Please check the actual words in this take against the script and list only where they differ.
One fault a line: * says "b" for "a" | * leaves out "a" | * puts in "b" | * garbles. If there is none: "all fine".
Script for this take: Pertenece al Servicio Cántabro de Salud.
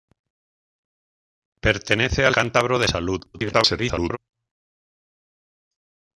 * leaves out "Servicio"
* garbles